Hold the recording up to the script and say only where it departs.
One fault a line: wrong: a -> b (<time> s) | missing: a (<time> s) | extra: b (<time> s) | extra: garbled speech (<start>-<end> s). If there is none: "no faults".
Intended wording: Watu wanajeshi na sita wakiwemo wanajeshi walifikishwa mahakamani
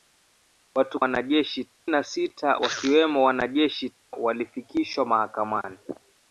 no faults